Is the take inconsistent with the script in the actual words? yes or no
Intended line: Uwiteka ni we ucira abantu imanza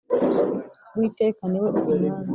yes